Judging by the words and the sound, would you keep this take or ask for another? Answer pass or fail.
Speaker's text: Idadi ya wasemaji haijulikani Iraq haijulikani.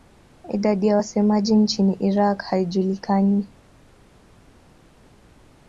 fail